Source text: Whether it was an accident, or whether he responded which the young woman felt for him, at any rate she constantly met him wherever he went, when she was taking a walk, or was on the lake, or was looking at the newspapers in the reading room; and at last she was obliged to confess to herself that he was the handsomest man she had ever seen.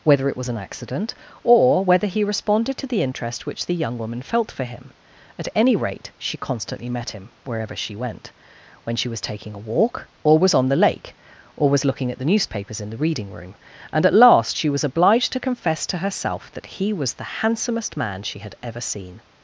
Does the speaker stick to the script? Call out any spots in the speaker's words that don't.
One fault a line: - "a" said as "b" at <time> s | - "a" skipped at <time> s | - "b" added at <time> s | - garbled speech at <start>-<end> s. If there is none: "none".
- "to the interest" added at 2.8 s
- "he" said as "she" at 7.8 s